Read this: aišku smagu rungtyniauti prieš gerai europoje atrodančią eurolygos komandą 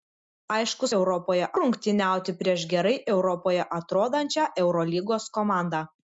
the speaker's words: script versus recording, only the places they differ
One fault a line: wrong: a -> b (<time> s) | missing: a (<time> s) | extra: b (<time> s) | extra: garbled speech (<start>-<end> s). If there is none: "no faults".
wrong: smagu -> europoje (1.0 s)